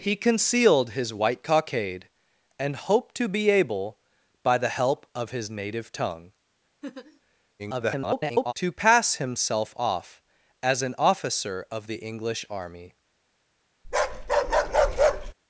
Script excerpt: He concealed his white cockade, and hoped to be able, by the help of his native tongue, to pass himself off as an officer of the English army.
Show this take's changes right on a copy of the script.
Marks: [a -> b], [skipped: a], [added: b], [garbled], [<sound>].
He concealed his white cockade, and hoped to be able, by the help of his native tongue, [laugh] [garbled] to pass himself off as an officer of the English army. [bark]